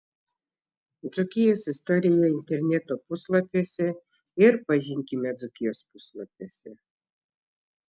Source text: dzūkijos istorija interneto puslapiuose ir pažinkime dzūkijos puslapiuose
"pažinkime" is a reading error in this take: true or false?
false